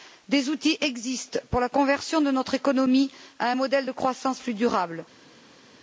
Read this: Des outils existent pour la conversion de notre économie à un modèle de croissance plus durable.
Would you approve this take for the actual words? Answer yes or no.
yes